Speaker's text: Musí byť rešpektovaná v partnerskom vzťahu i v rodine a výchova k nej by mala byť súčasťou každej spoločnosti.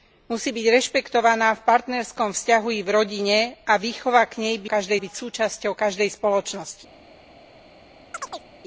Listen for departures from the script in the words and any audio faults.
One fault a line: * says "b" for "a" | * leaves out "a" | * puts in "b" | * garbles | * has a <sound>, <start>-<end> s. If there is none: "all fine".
* says "každej" for "mala"
* has a chirp, 8.1-8.4 s